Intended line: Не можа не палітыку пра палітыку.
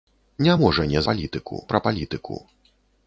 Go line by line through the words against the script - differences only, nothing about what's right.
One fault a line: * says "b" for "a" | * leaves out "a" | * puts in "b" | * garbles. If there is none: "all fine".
all fine